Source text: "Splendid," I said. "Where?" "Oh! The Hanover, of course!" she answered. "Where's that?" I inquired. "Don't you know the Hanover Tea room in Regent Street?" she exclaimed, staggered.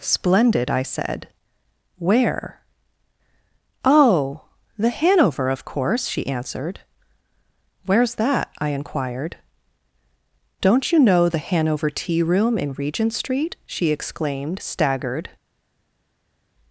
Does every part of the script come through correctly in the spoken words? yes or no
yes